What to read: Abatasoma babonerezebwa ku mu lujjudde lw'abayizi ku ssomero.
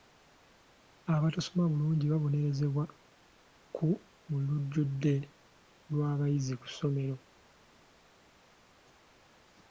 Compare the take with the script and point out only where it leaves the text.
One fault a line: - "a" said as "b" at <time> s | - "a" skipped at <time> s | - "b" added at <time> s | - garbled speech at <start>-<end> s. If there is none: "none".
- "bulungi" added at 1.7 s